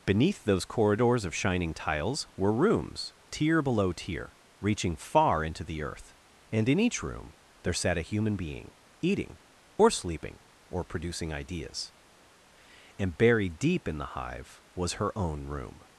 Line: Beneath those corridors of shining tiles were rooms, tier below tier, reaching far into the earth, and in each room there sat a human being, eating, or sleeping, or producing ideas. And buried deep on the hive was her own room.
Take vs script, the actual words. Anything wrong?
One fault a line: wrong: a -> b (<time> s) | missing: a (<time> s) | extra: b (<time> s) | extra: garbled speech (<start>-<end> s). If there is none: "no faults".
wrong: on -> in (13.9 s)